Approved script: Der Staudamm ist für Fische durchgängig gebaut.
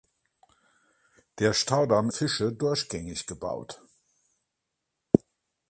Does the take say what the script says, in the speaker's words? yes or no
no